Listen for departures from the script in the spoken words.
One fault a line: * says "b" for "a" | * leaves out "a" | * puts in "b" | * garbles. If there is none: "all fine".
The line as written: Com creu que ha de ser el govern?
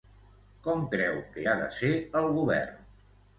all fine